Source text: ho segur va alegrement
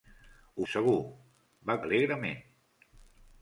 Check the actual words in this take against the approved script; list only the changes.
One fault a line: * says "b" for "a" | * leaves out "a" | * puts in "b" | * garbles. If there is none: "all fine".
all fine